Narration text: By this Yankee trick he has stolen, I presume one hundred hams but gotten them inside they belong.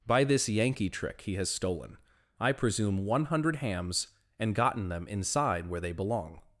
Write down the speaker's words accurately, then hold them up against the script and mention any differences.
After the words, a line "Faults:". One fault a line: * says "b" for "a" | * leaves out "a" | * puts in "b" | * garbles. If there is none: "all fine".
By this Yankee trick he has stolen, I presume one hundred hams and gotten them inside where they belong.
Faults:
* says "and" for "but"
* puts in "where"